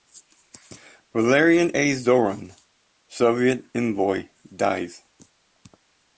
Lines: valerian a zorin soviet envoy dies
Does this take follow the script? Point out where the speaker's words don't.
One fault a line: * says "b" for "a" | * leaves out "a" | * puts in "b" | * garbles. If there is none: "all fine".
all fine